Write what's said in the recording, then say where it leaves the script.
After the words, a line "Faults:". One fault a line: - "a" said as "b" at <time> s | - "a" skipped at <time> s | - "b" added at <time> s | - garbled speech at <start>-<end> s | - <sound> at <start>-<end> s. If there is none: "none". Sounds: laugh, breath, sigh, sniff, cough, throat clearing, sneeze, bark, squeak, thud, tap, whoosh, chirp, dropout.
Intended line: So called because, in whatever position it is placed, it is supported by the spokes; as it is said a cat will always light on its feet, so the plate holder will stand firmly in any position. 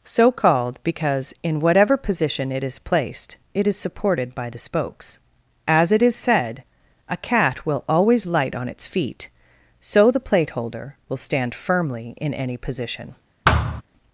So called because, in whatever position it is placed, it is supported by the spokes; as it is said a cat will always light on its feet, so the plate holder will stand firmly in any position.
Faults:
- thud at 13.4-13.8 s